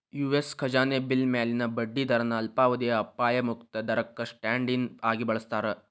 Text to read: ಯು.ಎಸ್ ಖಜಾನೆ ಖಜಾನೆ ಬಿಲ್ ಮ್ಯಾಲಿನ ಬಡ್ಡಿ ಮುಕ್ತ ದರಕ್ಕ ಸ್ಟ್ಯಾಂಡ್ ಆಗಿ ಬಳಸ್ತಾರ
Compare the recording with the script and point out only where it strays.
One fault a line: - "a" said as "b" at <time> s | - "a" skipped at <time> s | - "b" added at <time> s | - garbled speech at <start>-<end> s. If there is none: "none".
- "ಖಜಾನೆ" skipped at 1.0 s
- "ದರನ ಅಲ್ಪಾವಧಿಯ ಅಪಾಯ" added at 2.1 s
- "ಇನ್" added at 4.7 s